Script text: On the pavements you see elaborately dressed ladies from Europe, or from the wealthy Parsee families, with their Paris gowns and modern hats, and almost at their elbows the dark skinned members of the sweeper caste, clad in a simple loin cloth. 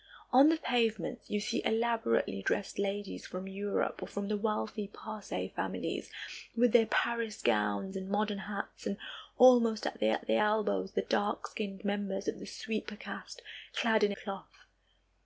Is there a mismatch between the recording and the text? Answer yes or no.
yes